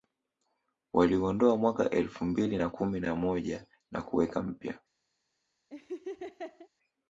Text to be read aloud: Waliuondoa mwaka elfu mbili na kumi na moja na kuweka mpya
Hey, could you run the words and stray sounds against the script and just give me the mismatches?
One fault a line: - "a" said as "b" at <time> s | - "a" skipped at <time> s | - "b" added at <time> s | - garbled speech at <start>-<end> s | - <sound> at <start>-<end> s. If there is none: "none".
- laugh at 5.7-6.7 s